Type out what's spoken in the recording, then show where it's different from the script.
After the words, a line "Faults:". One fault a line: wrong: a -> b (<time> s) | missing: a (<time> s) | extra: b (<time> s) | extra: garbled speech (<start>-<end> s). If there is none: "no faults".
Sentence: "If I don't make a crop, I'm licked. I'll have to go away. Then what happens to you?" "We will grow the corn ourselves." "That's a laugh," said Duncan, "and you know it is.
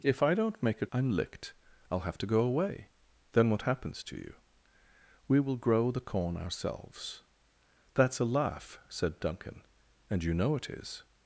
"If I don't make a I'm licked. I'll have to go away. Then what happens to you?" "We will grow the corn ourselves." "That's a laugh," said Duncan, "and you know it is.
Faults:
missing: crop (0.9 s)